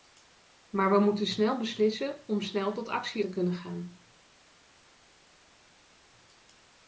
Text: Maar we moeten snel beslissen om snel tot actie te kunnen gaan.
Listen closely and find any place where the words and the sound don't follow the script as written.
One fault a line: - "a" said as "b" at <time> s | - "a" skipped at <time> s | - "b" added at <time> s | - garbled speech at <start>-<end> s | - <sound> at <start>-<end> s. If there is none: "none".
none